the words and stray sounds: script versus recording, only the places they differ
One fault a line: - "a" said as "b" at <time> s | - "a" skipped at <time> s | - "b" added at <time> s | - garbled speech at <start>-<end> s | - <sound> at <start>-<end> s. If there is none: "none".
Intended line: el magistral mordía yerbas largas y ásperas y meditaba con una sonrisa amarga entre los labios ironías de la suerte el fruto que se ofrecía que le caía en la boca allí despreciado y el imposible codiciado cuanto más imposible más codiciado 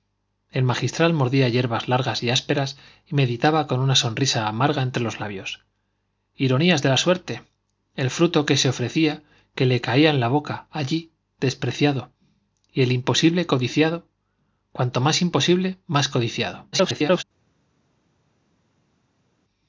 - garbled speech at 16.7-17.2 s